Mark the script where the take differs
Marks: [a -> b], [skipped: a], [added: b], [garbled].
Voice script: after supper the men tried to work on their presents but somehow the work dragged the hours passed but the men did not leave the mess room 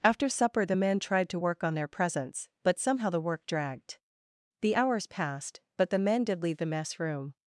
after supper the men tried to work on their presents but somehow the work dragged the hours passed but the men did [skipped: not] leave the mess room